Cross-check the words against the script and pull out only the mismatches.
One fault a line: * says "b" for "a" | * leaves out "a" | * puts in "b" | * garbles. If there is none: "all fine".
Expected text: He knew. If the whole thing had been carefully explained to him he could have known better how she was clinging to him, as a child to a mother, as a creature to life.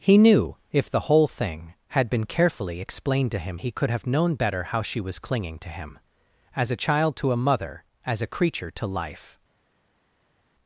all fine